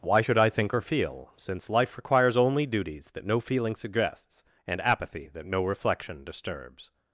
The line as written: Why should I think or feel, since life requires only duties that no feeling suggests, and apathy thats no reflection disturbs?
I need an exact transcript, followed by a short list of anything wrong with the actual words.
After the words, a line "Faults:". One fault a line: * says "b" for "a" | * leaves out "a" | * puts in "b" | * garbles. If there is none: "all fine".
Why should I think or feel, since life requires only duties that no feeling suggests, and apathy that no reflection disturbs?
Faults:
* says "that" for "thats"